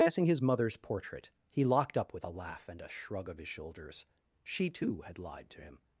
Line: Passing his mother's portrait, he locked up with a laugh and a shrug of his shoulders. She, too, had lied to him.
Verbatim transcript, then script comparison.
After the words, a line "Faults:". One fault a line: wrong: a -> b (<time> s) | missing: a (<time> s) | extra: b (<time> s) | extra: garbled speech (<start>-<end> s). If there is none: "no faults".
Passing his mother's portrait, he locked up with a laugh and a shrug of his shoulders. She, too, had lied to him.
Faults:
no faults